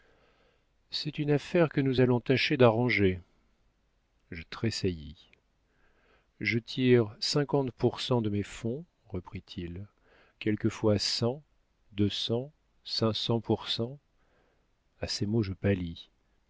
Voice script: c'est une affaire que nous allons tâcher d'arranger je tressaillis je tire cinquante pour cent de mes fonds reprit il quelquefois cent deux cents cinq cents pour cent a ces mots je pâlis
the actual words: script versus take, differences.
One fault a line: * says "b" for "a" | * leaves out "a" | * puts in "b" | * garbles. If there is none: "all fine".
all fine